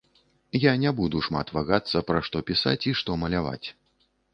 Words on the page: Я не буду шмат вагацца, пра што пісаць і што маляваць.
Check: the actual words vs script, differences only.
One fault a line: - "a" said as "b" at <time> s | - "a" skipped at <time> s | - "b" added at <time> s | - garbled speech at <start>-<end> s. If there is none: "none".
none